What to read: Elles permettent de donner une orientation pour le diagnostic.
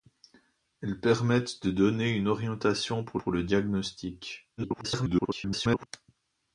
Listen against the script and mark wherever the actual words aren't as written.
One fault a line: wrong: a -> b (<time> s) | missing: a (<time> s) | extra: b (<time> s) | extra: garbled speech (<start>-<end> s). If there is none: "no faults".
extra: pour (3.2 s)
extra: garbled speech (4.6-5.9 s)